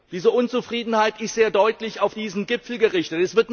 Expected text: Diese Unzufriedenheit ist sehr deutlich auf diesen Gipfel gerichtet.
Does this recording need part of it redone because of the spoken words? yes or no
no